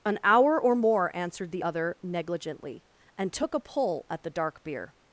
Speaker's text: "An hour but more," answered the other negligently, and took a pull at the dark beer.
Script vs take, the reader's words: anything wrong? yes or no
yes